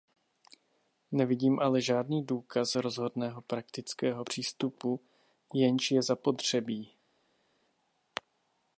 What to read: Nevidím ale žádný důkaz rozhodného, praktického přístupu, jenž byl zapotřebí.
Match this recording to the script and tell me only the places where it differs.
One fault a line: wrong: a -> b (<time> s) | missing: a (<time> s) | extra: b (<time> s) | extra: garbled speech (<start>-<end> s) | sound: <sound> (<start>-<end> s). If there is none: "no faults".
wrong: byl -> je (5.9 s)